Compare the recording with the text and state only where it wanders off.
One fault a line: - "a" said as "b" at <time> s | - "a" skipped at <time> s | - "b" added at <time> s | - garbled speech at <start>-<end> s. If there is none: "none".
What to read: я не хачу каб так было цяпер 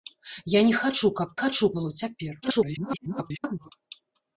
- "так" said as "хачу" at 1.4 s
- garbled speech at 2.4-3.7 s